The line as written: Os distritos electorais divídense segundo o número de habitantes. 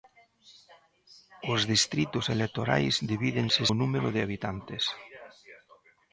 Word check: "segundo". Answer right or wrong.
wrong